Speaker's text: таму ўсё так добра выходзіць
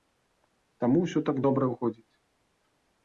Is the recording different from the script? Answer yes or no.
no